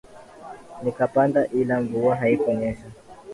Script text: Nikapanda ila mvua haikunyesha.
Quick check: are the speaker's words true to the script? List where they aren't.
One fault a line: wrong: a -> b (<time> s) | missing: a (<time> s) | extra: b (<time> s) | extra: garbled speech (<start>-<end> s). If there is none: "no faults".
no faults